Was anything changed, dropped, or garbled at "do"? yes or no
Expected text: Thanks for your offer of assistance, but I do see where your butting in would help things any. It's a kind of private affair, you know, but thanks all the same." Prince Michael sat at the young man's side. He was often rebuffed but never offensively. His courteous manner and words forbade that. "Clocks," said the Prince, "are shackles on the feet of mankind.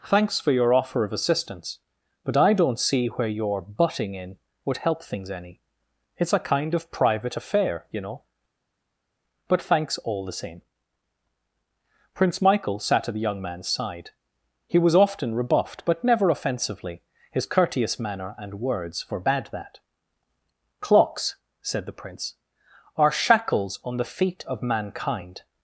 yes